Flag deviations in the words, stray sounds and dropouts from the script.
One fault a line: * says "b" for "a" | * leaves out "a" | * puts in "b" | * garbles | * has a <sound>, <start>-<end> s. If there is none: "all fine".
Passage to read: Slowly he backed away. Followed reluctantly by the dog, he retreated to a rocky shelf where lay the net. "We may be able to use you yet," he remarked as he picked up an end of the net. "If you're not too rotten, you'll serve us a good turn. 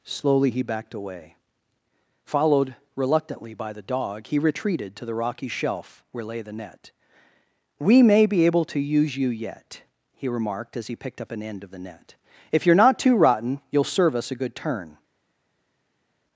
* says "the" for "a"